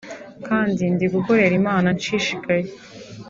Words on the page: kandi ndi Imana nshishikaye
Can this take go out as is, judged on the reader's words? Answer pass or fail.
fail